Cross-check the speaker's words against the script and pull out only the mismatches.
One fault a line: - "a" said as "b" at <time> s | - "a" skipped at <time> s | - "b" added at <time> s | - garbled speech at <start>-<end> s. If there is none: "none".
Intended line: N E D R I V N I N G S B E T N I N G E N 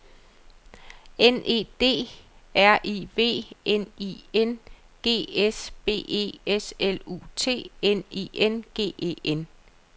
- "S L U" added at 6.5 s